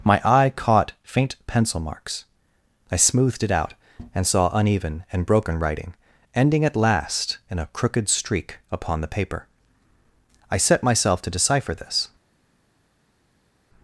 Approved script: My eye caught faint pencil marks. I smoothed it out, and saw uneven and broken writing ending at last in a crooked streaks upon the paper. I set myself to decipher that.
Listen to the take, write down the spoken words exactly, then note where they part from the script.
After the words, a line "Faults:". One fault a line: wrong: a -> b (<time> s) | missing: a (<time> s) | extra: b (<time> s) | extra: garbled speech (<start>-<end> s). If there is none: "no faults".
My eye caught faint pencil marks. I smoothed it out, and saw uneven and broken writing ending at last in a crooked streak upon the paper. I set myself to decipher this.
Faults:
wrong: streaks -> streak (8.1 s)
wrong: that -> this (11.7 s)